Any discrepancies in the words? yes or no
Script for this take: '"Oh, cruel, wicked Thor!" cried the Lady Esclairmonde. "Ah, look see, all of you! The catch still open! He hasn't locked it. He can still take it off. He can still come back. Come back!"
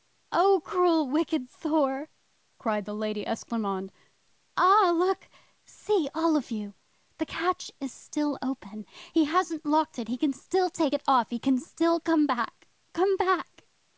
yes